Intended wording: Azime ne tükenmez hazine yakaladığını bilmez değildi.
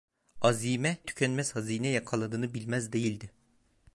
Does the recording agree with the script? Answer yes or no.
no